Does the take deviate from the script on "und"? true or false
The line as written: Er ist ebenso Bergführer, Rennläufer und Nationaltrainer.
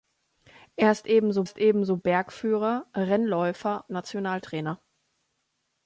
true